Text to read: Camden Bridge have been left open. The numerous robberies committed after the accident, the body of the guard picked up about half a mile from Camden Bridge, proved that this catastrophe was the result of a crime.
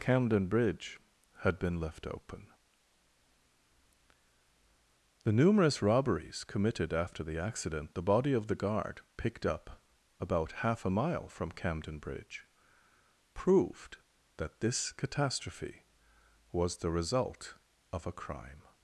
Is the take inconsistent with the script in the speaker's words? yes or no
yes